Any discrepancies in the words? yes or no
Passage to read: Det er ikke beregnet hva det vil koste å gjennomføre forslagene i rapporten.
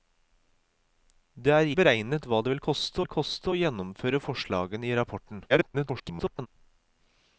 yes